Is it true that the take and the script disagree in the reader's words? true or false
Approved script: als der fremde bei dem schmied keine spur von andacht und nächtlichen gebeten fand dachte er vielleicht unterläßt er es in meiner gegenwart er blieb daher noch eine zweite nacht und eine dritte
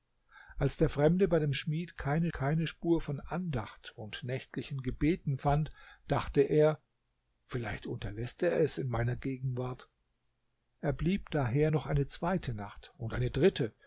true